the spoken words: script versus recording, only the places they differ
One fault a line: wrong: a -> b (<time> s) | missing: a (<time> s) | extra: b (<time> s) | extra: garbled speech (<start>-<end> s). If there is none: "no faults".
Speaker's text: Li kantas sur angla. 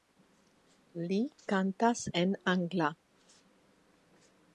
wrong: sur -> en (2.2 s)